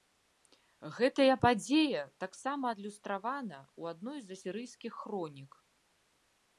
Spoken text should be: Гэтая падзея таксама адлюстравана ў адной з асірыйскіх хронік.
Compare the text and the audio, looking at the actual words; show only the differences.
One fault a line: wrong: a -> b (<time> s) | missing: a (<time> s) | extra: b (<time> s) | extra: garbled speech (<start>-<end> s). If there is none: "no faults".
no faults